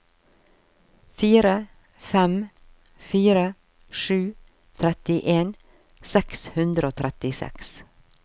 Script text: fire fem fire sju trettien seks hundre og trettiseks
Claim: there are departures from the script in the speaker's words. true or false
false